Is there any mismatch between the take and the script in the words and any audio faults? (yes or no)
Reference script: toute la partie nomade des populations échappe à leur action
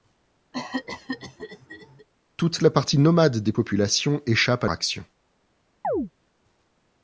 yes